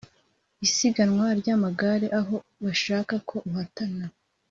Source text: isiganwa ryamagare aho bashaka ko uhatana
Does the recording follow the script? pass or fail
pass